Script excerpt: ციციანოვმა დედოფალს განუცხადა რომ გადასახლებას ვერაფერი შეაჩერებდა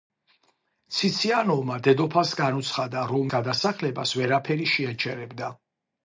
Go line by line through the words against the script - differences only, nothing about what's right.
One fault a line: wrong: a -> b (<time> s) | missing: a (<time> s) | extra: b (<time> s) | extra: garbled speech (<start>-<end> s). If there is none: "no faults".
no faults